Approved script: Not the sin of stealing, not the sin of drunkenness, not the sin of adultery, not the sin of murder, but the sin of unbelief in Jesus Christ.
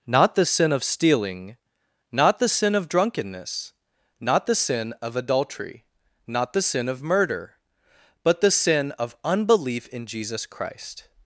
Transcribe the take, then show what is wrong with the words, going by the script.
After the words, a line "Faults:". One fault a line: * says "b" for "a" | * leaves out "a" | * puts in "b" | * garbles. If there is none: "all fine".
Not the sin of stealing, not the sin of drunkenness, not the sin of adultery, not the sin of murder, but the sin of unbelief in Jesus Christ.
Faults:
all fine